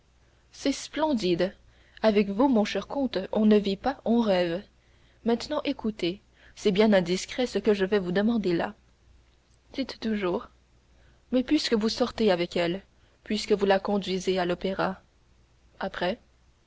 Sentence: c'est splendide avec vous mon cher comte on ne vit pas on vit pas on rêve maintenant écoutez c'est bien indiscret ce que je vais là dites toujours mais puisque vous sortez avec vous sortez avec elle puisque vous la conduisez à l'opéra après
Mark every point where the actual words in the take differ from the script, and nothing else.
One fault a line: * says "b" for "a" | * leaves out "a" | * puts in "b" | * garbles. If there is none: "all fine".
* leaves out "vit pas on"
* puts in "vous demander"
* leaves out "vous sortez avec"